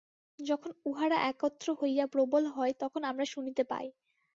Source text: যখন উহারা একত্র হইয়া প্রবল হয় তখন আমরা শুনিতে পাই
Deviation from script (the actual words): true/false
false